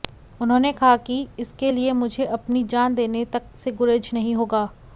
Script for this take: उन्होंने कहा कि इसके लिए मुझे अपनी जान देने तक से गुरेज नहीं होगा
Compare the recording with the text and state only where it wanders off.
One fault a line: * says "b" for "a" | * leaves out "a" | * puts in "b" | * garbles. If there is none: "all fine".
all fine